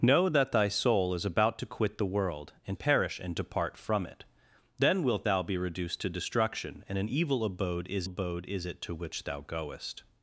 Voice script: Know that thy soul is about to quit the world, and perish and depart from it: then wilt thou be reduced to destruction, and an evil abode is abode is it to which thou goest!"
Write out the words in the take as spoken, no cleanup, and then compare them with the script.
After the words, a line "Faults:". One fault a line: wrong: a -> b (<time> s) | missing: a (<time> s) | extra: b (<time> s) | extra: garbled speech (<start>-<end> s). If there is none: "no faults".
Know that thy soul is about to quit the world, and perish and depart from it: then wilt thou be reduced to destruction, and an evil abode is abode is it to which thou goest!"
Faults:
no faults